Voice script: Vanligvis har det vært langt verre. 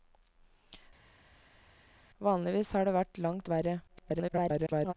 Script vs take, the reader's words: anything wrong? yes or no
yes